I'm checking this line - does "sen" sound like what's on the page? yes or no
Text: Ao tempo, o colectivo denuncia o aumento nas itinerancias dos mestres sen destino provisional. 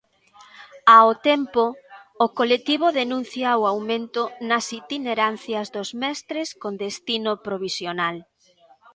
no